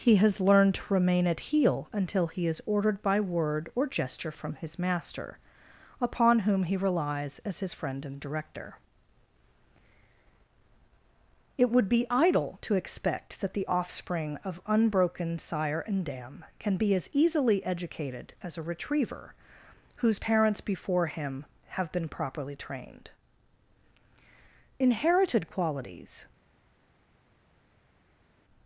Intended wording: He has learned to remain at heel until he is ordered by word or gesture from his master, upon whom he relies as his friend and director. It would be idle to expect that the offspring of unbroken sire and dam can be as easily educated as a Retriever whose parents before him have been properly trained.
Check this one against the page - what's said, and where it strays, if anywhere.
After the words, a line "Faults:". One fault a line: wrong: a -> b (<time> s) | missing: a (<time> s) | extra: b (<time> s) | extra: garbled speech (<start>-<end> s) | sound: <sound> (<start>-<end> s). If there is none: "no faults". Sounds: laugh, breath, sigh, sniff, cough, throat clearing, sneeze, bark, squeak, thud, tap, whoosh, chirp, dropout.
He has learned to remain at heel until he is ordered by word or gesture from his master, upon whom he relies as his friend and director. It would be idle to expect that the offspring of unbroken sire and dam can be as easily educated as a Retriever whose parents before him have been properly trained. Inherited qualities
Faults:
extra: Inherited qualities (24.8 s)